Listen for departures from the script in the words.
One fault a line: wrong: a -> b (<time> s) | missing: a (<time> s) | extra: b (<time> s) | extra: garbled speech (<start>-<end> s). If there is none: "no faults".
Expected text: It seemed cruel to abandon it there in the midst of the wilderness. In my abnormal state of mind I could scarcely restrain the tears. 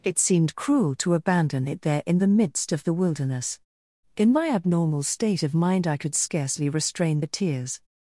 no faults